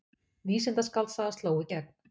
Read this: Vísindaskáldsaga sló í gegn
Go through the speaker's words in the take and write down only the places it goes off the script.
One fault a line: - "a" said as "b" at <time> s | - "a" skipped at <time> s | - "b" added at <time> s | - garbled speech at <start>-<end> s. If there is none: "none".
none